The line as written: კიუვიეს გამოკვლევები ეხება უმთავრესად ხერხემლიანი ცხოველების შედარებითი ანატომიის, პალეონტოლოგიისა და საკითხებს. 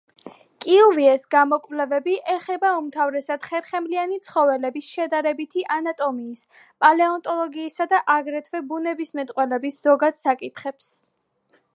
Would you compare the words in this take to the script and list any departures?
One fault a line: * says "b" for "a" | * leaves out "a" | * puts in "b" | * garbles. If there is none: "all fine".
* puts in "აგრეთვე ბუნებისმეტყველების ზოგად"